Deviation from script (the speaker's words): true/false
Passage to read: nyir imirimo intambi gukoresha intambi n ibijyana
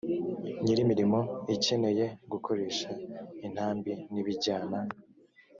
true